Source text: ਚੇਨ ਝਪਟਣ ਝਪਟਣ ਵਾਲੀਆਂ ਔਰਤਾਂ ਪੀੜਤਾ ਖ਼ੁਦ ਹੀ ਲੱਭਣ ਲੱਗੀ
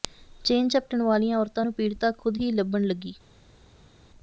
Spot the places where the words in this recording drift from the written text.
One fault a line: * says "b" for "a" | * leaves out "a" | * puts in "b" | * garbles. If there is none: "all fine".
* leaves out "ਝਪਟਣ"
* puts in "ਨੂੰ"